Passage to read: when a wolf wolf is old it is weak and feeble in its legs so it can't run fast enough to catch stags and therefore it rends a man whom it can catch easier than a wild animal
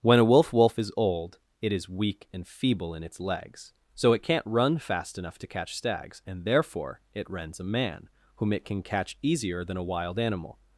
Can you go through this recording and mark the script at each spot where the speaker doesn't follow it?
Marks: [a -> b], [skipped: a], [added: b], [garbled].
when a wolf wolf is old it is weak and feeble in its legs so it can't run fast enough to catch stags and therefore it rends a man whom it can catch easier than a wild animal